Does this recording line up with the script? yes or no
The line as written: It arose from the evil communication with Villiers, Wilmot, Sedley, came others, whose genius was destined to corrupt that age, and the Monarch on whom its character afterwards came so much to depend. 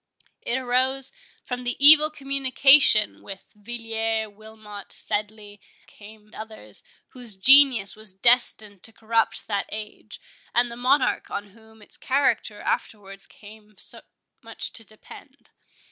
yes